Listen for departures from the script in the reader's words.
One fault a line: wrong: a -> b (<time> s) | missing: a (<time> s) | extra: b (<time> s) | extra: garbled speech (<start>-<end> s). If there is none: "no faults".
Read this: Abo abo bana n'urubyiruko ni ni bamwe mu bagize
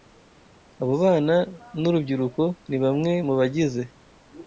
missing: abo (0.9 s)
missing: ni (2.8 s)